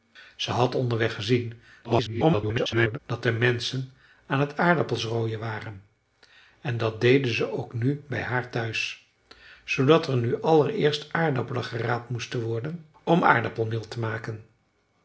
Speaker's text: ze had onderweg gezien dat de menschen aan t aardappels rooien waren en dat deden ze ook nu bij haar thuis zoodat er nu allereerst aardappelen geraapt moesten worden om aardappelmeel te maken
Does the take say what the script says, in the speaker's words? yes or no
no